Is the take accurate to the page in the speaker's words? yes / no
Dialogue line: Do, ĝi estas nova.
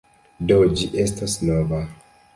no